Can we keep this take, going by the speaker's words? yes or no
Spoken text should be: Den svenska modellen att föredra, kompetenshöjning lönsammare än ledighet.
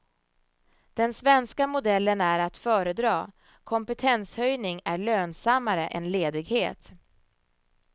no